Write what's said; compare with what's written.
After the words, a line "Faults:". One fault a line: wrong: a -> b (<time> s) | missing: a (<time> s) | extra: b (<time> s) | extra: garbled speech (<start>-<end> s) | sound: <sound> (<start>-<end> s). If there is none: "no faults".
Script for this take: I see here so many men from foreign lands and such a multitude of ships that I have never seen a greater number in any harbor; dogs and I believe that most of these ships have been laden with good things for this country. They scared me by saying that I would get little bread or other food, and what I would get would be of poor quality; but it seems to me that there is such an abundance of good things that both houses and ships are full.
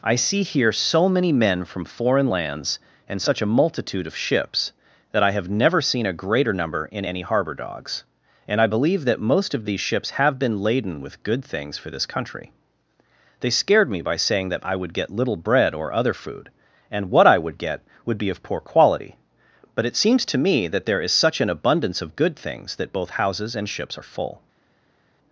I see here so many men from foreign lands and such a multitude of ships that I have never seen a greater number in any harbor; dogs and I believe that most of these ships have been laden with good things for this country. They scared me by saying that I would get little bread or other food, and what I would get would be of poor quality; but it seems to me that there is such an abundance of good things that both houses and ships are full.
Faults:
no faults